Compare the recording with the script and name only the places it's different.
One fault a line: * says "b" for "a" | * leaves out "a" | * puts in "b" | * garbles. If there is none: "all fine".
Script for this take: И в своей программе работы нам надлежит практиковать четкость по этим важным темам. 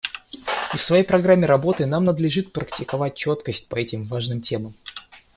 all fine